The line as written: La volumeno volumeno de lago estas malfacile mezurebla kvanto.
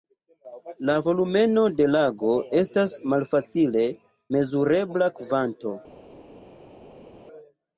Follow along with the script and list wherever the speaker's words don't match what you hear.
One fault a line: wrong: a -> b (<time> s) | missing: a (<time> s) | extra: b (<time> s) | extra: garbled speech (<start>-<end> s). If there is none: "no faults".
missing: volumeno (1.6 s)